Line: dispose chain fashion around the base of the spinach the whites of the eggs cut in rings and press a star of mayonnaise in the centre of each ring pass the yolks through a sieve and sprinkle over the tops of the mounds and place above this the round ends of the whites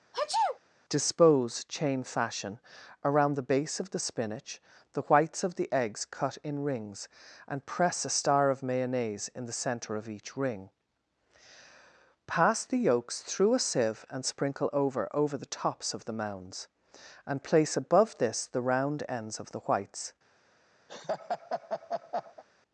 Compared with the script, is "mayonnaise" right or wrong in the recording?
right